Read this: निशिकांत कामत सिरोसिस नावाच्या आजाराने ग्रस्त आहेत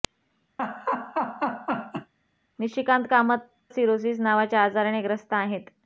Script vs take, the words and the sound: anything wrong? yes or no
yes